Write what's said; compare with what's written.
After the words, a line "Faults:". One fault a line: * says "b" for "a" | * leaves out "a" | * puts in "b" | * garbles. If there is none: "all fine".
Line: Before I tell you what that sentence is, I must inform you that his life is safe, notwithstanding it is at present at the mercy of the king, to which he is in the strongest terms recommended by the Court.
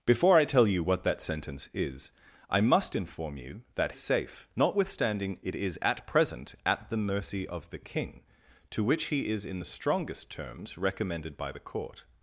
Before I tell you what that sentence is, I must inform you that safe, notwithstanding it is at present at the mercy of the king, to which he is in the strongest terms recommended by the Court.
Faults:
* leaves out "his life is"